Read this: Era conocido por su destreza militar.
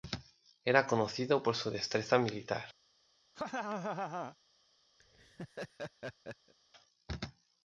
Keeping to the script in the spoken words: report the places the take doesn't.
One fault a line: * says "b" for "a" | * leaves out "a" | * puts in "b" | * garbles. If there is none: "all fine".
all fine